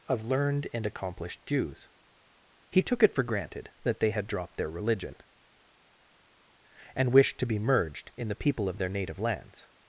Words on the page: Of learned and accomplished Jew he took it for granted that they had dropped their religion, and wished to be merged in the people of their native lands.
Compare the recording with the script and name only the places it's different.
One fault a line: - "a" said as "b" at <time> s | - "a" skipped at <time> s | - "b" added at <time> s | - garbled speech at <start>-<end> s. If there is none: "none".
- "Jew" said as "Jews" at 1.4 s